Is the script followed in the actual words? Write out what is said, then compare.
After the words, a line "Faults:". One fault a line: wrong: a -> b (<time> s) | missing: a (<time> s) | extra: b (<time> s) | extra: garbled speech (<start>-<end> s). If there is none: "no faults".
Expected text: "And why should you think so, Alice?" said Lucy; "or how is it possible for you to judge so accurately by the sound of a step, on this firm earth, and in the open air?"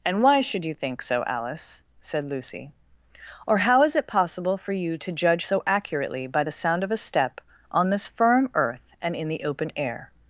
"And why should you think so, Alice?" said Lucy; "or how is it possible for you to judge so accurately by the sound of a step, on this firm earth, and in the open air?"
Faults:
no faults